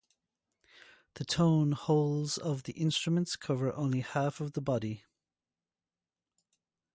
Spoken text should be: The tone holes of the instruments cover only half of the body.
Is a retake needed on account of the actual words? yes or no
no